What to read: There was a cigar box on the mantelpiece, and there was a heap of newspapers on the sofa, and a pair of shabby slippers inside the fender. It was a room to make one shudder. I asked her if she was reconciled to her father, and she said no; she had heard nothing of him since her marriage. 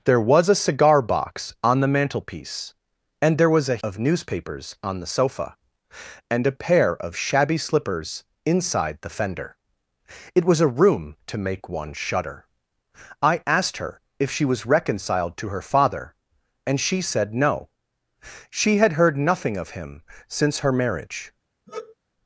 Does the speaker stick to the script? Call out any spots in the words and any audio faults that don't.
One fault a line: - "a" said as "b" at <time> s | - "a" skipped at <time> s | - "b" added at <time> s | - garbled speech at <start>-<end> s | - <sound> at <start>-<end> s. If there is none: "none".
- "heap" skipped at 3.8 s
- sigh at 21.7-22.0 s